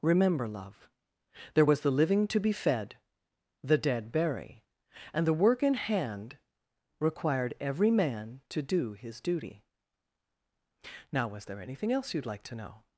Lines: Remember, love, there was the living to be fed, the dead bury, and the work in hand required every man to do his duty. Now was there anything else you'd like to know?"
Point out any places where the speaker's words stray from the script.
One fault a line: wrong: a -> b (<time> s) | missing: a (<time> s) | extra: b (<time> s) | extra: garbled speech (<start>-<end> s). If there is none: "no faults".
no faults